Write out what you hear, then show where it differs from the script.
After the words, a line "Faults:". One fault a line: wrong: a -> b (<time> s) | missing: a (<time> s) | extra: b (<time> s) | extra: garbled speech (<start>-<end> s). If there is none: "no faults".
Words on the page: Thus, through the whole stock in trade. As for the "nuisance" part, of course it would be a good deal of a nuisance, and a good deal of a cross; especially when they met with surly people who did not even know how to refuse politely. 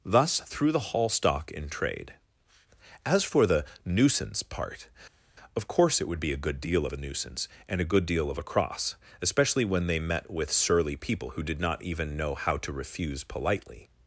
Thus, through the hall stock in trade. As for the "nuisance" part, of course it would be a good deal of a nuisance, and a good deal of a cross; especially when they met with surly people who did not even know how to refuse politely.
Faults:
wrong: whole -> hall (0.9 s)